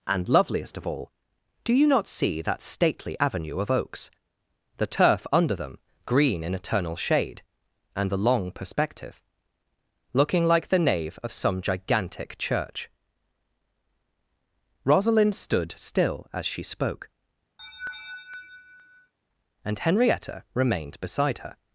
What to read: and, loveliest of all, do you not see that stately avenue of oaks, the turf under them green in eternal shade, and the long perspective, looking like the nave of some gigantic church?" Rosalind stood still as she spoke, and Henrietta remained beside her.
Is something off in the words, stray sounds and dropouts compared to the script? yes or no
yes